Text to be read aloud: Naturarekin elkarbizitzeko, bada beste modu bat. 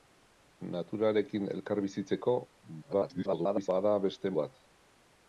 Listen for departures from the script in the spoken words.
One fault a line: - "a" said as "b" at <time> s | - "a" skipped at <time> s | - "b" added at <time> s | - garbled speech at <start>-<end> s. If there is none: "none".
- garbled speech at 2.8-3.7 s
- "modu" skipped at 4.3 s